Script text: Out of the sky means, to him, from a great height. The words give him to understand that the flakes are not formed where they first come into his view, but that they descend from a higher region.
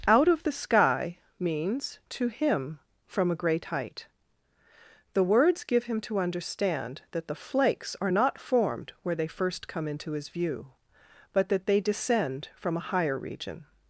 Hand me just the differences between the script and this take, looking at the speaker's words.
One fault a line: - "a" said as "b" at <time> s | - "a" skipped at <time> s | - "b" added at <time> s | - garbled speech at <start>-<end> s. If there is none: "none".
none